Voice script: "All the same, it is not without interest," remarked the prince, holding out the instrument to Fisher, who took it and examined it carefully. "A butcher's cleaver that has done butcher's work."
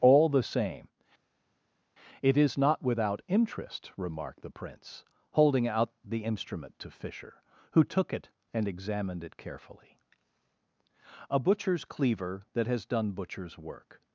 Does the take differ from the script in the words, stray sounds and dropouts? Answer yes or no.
no